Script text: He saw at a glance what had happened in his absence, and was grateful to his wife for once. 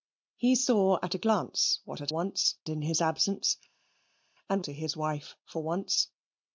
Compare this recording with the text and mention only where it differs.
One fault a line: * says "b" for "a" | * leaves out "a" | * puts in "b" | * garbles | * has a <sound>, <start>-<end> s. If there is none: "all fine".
* says "once" for "happened"
* leaves out "was grateful"